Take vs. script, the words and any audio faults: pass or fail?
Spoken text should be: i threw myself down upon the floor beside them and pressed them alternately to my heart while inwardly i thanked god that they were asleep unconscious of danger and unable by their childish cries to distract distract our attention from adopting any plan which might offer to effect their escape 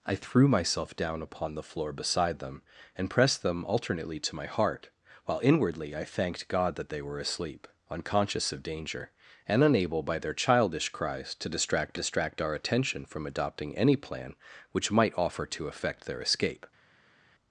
pass